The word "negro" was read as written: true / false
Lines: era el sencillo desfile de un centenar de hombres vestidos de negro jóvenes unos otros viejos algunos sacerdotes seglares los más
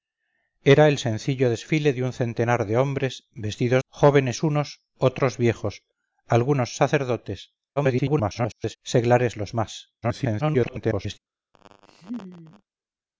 false